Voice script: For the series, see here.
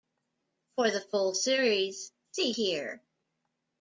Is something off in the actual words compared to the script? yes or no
yes